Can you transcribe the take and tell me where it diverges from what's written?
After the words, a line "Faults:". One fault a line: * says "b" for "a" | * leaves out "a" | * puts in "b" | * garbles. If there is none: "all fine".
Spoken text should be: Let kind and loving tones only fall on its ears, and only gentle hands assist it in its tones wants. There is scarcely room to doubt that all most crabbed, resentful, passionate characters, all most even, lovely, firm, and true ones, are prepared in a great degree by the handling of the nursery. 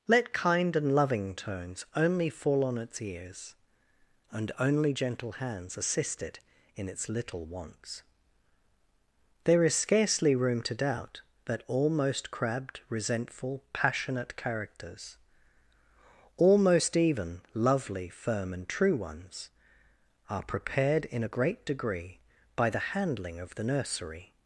Let kind and loving tones only fall on its ears, and only gentle hands assist it in its little wants. There is scarcely room to doubt that all most crabbed, resentful, passionate characters, all most even, lovely, firm, and true ones, are prepared in a great degree by the handling of the nursery.
Faults:
* says "little" for "tones"